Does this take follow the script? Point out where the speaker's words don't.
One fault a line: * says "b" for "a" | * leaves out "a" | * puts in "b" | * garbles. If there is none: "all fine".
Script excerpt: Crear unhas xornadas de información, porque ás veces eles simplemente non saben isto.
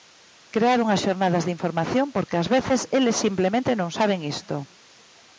all fine